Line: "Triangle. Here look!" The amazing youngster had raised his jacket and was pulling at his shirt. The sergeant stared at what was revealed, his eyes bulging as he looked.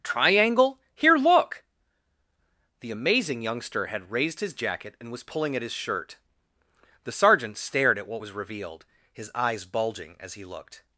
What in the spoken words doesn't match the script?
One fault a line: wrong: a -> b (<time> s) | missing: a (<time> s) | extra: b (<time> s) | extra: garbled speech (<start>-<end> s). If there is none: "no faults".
no faults